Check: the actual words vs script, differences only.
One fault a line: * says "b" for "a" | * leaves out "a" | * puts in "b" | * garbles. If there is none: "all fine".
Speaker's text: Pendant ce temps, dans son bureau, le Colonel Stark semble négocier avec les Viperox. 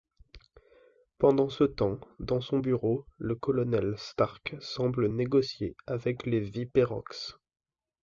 all fine